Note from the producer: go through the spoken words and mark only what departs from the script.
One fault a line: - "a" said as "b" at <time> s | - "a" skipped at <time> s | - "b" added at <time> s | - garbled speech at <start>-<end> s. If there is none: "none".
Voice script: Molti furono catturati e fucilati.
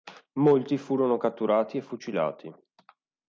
none